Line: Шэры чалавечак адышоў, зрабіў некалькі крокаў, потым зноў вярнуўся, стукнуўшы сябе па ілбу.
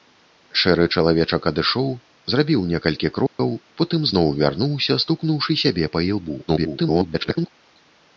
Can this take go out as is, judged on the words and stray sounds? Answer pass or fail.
fail